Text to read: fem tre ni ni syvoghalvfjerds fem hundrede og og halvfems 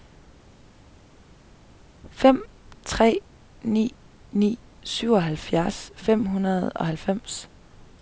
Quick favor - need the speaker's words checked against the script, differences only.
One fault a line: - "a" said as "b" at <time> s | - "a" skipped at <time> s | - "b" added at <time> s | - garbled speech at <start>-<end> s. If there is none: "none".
- "og" skipped at 6.9 s